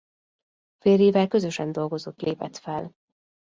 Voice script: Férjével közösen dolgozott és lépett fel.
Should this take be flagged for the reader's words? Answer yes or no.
yes